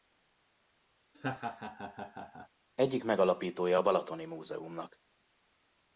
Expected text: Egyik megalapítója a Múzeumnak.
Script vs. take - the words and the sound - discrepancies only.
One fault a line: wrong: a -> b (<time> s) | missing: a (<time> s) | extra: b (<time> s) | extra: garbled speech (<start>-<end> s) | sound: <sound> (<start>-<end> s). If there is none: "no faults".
sound: laugh (1.1-2.5 s)
extra: Balatoni (3.8 s)